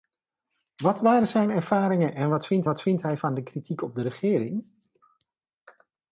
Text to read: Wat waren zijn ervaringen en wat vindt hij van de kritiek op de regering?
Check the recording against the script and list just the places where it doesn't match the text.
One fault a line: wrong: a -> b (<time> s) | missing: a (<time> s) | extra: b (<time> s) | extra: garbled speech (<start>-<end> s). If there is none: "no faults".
extra: wat vindt (2.6 s)